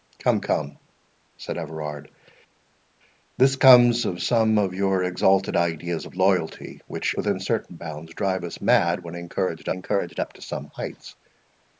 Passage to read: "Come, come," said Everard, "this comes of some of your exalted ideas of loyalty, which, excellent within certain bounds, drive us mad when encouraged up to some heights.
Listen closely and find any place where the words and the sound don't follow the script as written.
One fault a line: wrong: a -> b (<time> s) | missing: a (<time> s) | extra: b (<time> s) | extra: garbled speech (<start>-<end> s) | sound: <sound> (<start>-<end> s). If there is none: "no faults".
missing: excellent (7.1 s)
extra: encouraged (9.7 s)